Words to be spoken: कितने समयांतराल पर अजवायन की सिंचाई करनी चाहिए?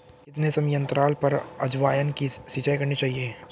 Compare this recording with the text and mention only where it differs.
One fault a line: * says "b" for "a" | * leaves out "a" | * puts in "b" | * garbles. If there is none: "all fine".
all fine